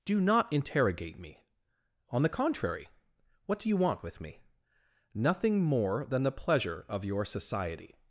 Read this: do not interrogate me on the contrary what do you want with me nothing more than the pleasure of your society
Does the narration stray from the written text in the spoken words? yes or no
no